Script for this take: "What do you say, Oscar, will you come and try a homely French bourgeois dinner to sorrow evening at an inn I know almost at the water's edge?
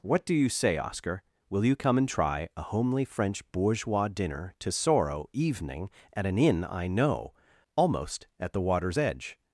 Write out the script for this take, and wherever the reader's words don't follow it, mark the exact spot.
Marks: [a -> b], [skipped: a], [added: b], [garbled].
"What do you say, Oscar, will you come and try a homely French bourgeois dinner to sorrow evening at an inn I know almost at the water's edge?